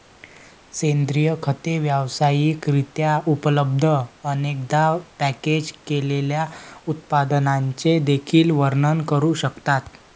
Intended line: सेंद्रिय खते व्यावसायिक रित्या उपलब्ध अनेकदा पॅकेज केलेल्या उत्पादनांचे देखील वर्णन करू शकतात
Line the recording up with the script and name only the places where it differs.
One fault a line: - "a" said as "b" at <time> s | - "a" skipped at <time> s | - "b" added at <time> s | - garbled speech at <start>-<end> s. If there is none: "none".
none